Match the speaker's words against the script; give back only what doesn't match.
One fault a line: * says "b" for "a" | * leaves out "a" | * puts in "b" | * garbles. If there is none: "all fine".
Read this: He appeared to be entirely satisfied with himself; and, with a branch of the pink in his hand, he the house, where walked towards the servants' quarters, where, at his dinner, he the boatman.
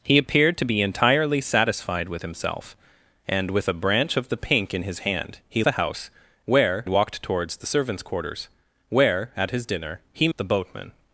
all fine